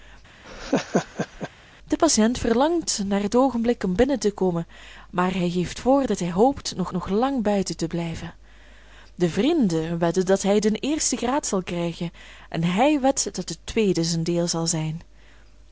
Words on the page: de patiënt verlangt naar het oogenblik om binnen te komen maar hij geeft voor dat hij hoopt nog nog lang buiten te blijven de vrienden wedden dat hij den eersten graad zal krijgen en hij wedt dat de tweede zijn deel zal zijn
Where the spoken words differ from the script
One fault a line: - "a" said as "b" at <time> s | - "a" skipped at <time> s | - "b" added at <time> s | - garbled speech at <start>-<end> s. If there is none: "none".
none